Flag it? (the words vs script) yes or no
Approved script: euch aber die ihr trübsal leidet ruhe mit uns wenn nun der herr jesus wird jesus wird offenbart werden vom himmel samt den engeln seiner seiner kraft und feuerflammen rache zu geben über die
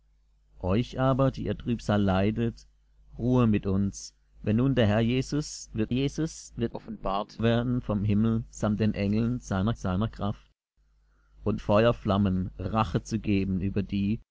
no